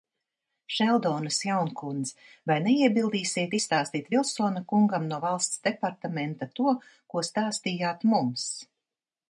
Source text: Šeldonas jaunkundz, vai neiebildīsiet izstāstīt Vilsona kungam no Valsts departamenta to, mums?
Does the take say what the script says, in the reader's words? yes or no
no